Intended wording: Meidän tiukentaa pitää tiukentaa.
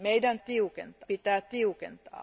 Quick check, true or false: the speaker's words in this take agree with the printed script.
true